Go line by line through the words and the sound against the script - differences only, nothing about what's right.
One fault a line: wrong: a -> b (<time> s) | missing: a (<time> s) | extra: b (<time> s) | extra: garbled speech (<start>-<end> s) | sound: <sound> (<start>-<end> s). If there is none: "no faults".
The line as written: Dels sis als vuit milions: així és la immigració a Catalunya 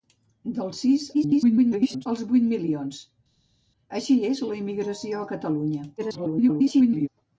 extra: garbled speech (1.1-2.1 s)
extra: garbled speech (6.0-7.1 s)